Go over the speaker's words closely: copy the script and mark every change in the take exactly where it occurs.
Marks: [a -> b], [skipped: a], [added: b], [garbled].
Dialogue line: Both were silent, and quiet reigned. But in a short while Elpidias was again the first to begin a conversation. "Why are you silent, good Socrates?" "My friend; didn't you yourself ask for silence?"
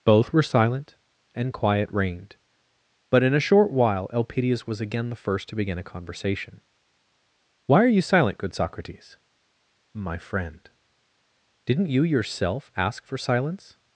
Both were silent, and quiet reigned. But in a short while Elpidias was again the first to begin a conversation. "Why are you silent, good Socrates?" "My friend; didn't you yourself ask for silence?"